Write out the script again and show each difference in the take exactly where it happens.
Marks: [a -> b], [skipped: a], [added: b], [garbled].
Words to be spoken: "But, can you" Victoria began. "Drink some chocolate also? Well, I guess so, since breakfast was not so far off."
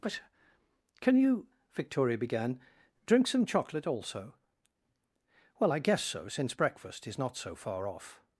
"But, can you" Victoria began. "Drink some chocolate also? Well, I guess so, since breakfast [was -> is] not so far off."